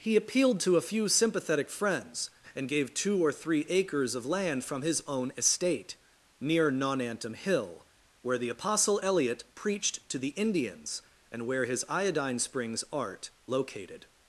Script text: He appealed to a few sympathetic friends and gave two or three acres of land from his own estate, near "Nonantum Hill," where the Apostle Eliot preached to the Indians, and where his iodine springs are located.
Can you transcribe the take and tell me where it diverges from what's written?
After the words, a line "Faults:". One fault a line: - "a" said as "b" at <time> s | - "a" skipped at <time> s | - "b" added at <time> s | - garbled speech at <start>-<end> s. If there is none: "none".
He appealed to a few sympathetic friends and gave two or three acres of land from his own estate, near "Nonantum Hill," where the Apostle Eliot preached to the Indians, and where his iodine springs art located.
Faults:
- "are" said as "art" at 12.9 s